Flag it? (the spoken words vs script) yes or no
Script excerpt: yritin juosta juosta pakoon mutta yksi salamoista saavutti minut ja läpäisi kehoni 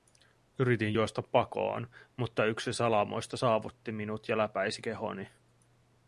yes